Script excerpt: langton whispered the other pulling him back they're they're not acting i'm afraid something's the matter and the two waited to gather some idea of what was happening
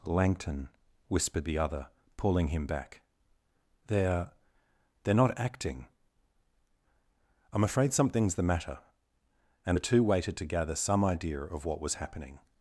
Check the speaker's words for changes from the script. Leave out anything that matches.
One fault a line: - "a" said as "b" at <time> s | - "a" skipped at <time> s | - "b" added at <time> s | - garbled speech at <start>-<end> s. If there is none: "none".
none